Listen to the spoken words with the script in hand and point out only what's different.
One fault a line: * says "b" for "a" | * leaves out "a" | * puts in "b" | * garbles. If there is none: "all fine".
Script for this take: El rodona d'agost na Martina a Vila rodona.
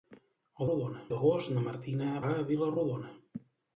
all fine